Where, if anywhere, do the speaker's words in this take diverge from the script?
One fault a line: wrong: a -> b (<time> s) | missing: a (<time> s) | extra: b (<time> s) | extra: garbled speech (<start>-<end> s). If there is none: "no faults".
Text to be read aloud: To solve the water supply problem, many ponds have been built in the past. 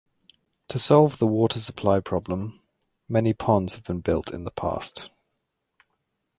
no faults